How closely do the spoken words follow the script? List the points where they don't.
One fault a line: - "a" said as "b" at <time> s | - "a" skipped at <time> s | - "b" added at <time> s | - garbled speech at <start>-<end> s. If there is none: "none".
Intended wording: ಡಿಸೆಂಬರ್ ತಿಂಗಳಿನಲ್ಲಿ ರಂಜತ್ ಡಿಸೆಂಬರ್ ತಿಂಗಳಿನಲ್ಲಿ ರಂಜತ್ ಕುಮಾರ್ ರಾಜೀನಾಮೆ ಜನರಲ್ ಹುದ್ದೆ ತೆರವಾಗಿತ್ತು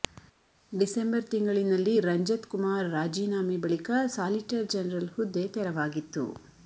- "ಡಿಸೆಂಬರ್ ತಿಂಗಳಿನಲ್ಲಿ ರಂಜತ್ ಕುಮಾರ್ ರಾಜೀನಾಮೆ" said as "ಕುಮಾರ್ ರಾಜೀನಾಮೆ ಬಳಿಕ ಸಾಲಿಟರ್" at 2.5 s